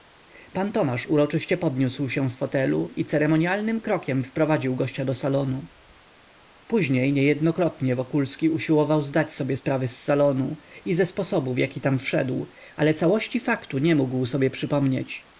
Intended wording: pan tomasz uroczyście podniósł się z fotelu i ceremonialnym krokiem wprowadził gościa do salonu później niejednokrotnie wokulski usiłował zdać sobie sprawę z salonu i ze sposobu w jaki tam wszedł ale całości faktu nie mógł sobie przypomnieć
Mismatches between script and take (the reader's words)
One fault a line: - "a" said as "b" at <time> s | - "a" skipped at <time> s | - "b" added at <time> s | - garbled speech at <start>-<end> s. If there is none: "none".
none